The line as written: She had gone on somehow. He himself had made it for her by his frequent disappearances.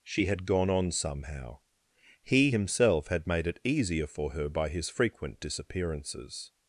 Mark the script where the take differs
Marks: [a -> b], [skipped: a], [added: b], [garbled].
She had gone on somehow. He himself had made it [added: easier] for her by his frequent disappearances.